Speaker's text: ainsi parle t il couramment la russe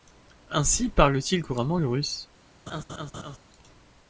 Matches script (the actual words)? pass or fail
fail